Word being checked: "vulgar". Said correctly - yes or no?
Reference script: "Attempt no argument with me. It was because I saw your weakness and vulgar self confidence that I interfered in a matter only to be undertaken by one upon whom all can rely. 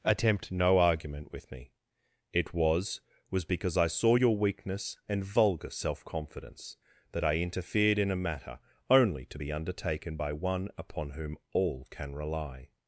yes